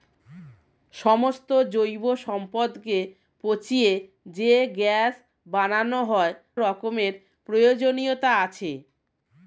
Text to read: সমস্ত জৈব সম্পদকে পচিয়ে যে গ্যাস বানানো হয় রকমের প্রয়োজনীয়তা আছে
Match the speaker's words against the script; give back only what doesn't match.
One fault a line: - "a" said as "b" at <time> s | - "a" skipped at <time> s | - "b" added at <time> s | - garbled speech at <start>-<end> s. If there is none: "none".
none